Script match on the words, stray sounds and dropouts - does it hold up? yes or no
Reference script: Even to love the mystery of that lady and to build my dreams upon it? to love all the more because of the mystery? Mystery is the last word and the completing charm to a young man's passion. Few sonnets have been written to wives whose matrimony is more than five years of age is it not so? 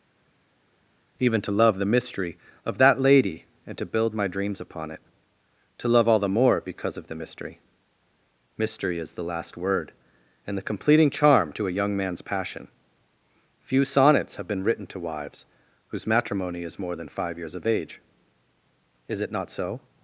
yes